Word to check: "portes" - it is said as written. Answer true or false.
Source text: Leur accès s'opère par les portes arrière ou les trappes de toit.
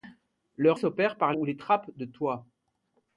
false